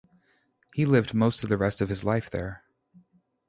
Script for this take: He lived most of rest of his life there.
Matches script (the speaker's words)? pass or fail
fail